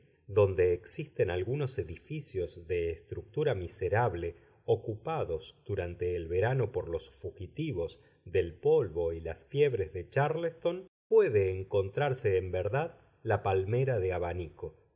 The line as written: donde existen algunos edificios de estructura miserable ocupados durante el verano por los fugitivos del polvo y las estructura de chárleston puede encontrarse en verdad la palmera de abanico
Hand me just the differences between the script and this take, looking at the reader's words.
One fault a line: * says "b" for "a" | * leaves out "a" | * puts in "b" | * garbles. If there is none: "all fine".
* says "fiebres" for "estructura"